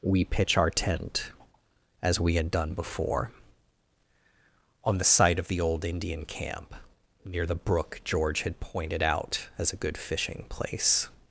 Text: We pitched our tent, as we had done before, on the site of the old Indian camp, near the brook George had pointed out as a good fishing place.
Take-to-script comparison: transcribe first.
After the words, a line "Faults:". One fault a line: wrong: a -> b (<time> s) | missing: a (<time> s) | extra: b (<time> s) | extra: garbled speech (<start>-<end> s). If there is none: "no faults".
We pitch our tent, as we had done before, on the site of the old Indian camp, near the brook George had pointed out as a good fishing place.
Faults:
wrong: pitched -> pitch (0.2 s)